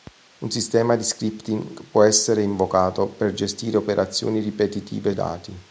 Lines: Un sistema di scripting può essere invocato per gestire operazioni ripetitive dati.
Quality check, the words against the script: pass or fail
pass